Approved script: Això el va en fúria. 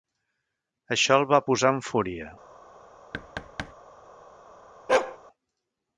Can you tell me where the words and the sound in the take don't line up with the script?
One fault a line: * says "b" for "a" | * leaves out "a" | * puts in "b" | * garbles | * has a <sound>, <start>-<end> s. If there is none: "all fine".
* puts in "posar"
* has a thud, 3.1-3.7 s
* has a bark, 4.9-5.2 s